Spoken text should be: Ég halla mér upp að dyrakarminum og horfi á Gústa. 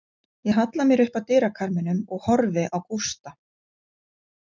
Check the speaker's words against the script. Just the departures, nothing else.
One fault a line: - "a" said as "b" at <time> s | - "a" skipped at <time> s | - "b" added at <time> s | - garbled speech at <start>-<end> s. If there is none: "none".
none